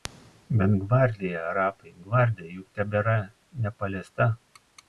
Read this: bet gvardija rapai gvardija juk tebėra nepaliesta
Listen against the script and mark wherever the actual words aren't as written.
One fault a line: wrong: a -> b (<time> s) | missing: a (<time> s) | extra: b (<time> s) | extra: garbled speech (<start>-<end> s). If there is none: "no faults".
no faults